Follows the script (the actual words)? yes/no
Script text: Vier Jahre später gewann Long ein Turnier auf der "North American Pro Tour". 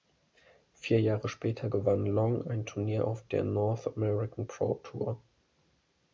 yes